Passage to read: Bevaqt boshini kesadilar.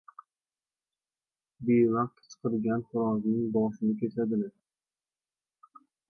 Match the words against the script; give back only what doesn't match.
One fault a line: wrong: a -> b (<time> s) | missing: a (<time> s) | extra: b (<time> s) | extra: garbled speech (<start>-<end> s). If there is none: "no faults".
extra: qichqirgan xo‘rozning (2.2 s)